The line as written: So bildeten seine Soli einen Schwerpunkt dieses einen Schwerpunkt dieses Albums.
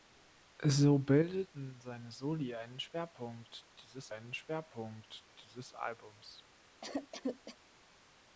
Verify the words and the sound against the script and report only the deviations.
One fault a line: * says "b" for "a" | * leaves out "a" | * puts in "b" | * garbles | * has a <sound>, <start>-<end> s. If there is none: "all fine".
* has a cough, 6.8-7.6 s